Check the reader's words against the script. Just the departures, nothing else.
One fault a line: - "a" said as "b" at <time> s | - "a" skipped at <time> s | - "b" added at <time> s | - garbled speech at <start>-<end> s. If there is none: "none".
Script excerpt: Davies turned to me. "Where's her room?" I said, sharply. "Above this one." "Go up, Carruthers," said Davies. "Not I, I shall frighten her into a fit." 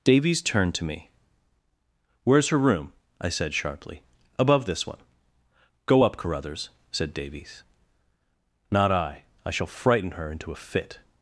none